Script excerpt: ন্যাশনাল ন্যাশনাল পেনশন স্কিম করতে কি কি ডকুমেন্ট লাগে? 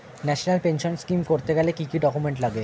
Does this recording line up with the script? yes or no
no